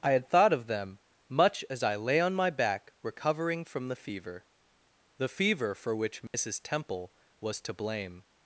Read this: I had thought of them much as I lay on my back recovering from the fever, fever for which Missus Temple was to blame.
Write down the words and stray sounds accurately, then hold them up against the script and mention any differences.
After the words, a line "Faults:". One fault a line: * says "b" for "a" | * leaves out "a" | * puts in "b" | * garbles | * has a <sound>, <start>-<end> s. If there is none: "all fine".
I had thought of them much as I lay on my back recovering from the fever, the fever for which Missus Temple was to blame.
Faults:
* puts in "the"
* has a dropout, 6.3-6.3 s